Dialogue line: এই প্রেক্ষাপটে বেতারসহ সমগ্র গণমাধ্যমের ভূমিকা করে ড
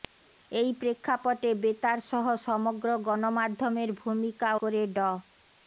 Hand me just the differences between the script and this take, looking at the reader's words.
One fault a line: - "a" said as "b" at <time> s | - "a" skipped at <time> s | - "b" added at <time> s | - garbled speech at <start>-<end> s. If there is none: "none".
none